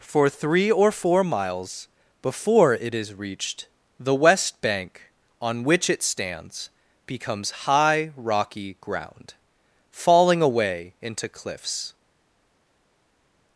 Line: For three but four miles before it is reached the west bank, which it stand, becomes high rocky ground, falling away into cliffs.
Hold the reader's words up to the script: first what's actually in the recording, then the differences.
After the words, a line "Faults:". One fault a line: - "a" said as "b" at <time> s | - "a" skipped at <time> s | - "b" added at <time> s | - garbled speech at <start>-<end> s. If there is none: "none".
For three or four miles before it is reached the west bank, on which it stands, becomes high rocky ground, falling away into cliffs.
Faults:
- "but" said as "or" at 0.7 s
- "on" added at 5.4 s
- "stand" said as "stands" at 6.0 s